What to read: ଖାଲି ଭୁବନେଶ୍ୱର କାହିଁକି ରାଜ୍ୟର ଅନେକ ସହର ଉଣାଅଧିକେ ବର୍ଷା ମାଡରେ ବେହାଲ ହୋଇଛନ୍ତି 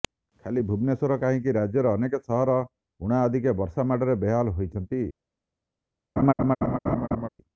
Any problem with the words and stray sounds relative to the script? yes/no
yes